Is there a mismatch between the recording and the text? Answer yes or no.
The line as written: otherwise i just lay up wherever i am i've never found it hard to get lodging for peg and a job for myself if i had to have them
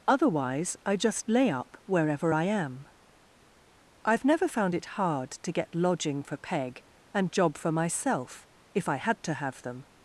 yes